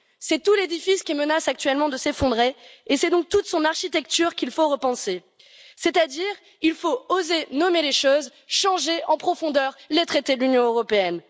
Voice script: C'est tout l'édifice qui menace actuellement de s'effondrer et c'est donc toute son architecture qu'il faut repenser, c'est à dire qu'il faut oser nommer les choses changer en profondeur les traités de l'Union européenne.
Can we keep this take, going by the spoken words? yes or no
yes